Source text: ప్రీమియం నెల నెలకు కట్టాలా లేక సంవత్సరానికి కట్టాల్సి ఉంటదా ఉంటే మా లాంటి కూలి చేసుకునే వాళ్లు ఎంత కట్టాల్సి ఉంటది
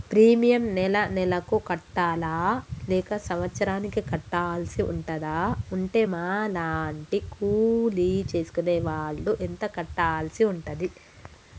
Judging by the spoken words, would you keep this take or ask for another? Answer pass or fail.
pass